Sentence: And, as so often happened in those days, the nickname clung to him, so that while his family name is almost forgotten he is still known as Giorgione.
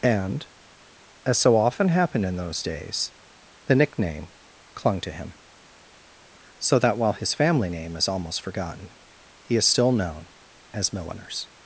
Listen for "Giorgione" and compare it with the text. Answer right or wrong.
wrong